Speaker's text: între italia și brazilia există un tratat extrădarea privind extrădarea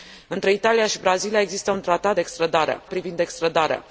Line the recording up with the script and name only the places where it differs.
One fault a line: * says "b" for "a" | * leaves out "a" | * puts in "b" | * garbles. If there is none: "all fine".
all fine